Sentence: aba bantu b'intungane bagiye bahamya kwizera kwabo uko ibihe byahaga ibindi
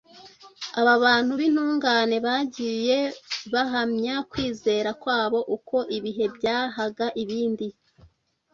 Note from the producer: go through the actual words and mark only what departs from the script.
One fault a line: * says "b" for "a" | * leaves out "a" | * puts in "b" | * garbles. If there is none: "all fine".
all fine